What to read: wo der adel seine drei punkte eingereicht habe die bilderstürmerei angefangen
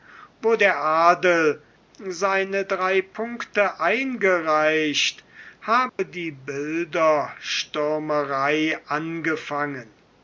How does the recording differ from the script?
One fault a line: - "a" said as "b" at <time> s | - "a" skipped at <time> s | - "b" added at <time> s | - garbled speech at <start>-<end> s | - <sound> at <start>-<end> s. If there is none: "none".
- dropout at 5.9-6.0 s